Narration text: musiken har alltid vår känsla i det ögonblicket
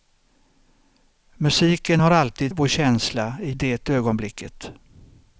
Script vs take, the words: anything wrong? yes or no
no